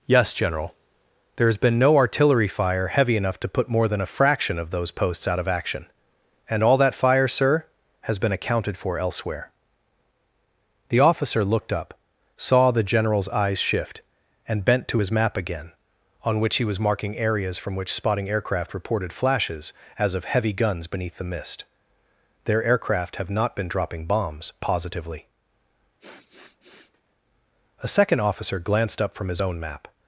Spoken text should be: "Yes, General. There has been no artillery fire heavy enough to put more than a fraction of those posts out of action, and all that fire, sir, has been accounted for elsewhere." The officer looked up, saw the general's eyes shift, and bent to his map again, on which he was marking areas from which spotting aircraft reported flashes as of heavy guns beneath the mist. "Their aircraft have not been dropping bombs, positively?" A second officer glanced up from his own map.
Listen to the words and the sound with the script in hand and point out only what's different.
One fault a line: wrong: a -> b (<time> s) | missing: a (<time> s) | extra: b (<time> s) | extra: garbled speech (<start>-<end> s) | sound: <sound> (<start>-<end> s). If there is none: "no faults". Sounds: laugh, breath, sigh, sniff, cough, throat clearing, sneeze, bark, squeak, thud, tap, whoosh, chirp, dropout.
sound: sniff (26.0-27.0 s)